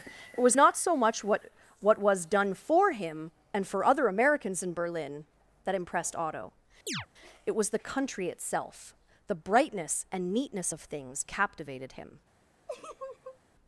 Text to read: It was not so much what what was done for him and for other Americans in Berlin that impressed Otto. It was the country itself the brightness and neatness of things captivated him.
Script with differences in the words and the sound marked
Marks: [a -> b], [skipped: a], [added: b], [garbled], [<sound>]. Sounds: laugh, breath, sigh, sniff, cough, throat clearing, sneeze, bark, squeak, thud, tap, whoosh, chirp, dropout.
It was not so much what what was done for him and for other Americans in Berlin that impressed Otto. [chirp] It was the country itself the brightness and neatness of things captivated him. [laugh]